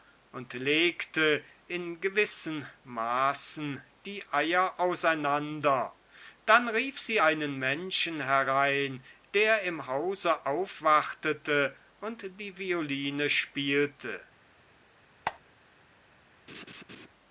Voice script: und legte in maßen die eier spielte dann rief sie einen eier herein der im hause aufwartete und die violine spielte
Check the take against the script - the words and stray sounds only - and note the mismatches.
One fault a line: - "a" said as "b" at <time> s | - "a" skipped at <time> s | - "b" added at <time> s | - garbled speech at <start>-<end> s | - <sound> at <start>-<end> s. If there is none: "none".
- "gewissen" added at 2.0 s
- "spielte" said as "auseinander" at 4.8 s
- "eier" said as "menschen" at 7.6 s
- squeak at 15.2-15.4 s
- laugh at 16.5-17.1 s